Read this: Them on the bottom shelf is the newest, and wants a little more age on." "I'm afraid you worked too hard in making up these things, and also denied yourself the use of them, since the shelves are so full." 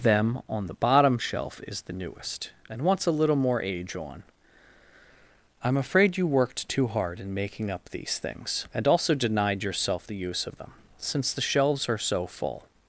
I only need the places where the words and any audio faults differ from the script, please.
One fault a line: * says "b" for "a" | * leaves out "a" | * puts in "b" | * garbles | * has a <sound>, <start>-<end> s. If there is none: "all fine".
all fine